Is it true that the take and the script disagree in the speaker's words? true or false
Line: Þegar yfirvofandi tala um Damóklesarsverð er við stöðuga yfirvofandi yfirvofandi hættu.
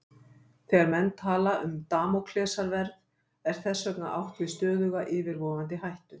true